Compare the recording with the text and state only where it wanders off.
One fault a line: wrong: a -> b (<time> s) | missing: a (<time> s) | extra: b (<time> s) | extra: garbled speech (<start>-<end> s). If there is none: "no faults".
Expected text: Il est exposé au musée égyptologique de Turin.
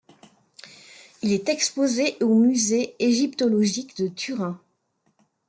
no faults